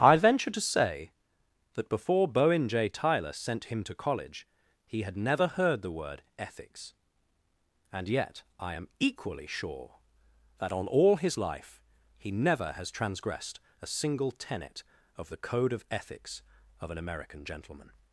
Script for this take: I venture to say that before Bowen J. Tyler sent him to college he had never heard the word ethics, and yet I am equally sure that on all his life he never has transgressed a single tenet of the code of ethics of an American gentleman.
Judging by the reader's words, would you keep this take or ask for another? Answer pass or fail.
pass